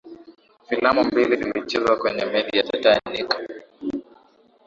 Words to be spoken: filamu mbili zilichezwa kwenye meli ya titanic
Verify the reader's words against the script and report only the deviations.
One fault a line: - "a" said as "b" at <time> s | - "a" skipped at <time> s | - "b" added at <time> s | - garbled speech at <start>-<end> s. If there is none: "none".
none